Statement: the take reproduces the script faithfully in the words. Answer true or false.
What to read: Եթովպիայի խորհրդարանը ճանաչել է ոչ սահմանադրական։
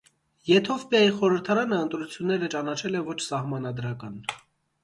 false